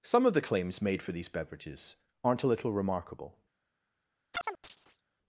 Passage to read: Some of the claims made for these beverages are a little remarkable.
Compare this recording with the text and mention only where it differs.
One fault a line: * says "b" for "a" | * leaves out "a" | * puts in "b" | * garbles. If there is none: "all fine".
* says "aren't" for "are"